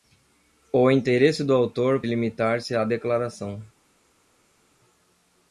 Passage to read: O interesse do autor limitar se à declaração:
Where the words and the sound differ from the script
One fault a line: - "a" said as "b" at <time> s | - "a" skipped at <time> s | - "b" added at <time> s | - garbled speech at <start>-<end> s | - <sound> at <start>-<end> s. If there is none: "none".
none